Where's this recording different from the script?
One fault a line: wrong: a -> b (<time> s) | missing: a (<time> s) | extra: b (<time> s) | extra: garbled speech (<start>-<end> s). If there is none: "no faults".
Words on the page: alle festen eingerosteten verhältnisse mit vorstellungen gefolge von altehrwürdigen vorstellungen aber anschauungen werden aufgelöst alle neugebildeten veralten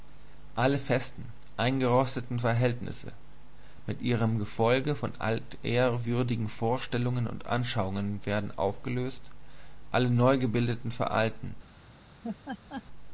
wrong: vorstellungen -> ihrem (4.0 s)
wrong: aber -> und (7.3 s)